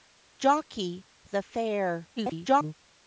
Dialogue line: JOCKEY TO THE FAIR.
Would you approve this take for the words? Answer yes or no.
no